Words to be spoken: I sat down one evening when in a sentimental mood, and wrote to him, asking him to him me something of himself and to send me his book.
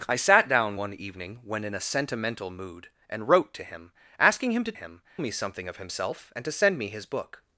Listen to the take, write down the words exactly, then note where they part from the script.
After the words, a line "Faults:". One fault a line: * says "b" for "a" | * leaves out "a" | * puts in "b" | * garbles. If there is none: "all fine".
I sat down one evening when in a sentimental mood, and wrote to him, asking him to him me something of himself and to send me his book.
Faults:
all fine